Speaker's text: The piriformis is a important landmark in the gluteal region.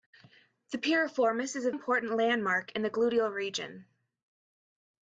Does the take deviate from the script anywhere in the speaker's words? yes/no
no